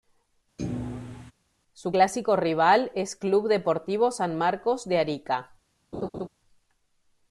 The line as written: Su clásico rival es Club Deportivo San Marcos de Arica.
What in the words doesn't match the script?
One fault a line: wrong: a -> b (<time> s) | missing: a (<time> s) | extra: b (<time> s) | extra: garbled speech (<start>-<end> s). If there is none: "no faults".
no faults